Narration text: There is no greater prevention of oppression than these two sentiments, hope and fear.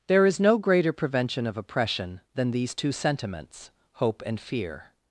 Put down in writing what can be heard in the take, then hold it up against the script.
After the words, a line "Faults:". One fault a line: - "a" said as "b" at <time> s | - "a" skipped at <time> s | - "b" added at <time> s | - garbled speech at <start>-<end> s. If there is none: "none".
There is no greater prevention of oppression than these two sentiments, hope and fear.
Faults:
none